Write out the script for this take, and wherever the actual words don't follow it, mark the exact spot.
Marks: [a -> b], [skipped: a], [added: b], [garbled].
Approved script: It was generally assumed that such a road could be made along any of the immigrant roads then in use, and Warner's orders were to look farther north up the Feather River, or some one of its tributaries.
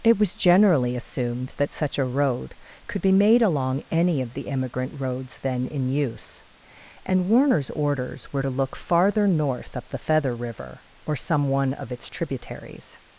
It was generally assumed that such a road could be made along any of the immigrant roads then in use, and Warner's orders were to look farther north up the Feather River, or some one of its tributaries.